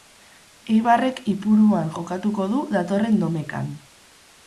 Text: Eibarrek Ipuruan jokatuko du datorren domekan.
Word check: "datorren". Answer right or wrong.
right